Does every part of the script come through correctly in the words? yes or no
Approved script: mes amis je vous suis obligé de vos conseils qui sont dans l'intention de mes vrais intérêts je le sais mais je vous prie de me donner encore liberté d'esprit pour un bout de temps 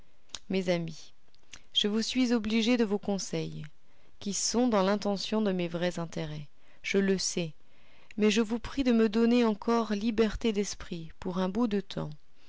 yes